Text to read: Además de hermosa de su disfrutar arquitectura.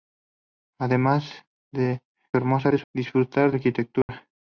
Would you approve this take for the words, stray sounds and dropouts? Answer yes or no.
no